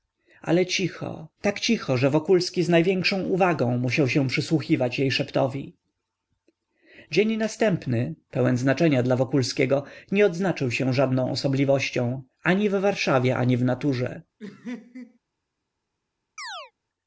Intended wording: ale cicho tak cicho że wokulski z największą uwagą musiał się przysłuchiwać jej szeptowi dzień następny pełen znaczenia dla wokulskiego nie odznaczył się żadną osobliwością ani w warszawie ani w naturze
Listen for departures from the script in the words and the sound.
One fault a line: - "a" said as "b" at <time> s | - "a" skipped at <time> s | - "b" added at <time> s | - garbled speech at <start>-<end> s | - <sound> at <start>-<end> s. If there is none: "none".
- laugh at 14.4-15.2 s
- chirp at 16.4-16.7 s